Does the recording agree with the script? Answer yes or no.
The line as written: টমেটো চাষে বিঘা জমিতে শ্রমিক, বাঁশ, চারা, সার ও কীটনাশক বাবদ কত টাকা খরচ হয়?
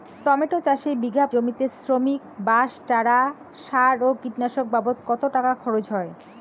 yes